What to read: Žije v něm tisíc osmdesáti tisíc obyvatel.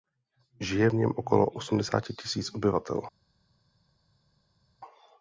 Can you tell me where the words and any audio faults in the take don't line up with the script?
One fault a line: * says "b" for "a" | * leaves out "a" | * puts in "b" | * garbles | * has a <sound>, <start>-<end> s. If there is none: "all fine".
* says "okolo" for "tisíc"